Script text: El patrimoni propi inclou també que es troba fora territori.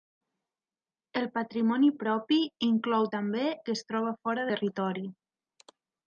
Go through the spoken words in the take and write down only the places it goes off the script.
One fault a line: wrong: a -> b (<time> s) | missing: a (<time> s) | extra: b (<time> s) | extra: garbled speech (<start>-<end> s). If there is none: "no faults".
no faults